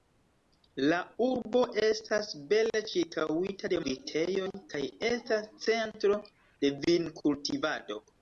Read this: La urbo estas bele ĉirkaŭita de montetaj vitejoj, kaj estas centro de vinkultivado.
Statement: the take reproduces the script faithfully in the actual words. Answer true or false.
false